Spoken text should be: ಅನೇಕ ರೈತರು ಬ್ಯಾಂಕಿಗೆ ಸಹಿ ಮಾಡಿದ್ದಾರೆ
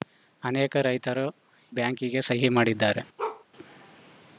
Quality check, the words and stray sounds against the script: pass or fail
fail